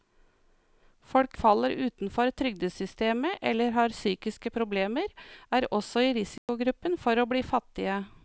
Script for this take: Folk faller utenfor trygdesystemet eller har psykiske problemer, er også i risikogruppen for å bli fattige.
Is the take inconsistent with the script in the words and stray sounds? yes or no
yes